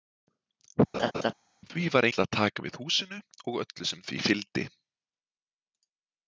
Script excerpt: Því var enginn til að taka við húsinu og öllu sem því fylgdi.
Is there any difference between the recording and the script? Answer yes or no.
yes